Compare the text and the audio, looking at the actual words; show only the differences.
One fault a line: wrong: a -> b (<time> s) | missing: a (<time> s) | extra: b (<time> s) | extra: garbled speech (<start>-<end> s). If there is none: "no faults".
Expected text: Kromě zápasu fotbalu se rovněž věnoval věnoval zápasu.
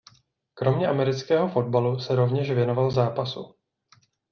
wrong: zápasu -> amerického (0.9 s)
missing: věnoval (2.9 s)